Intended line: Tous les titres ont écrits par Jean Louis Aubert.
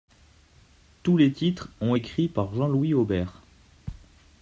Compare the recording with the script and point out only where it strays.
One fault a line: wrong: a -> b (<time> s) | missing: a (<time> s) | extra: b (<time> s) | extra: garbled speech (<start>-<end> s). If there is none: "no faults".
no faults